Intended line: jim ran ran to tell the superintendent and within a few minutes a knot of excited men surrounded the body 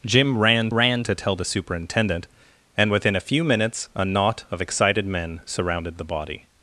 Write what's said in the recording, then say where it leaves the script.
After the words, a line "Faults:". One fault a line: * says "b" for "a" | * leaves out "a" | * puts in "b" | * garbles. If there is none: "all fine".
jim ran ran to tell the superintendent and within a few minutes a knot of excited men surrounded the body
Faults:
all fine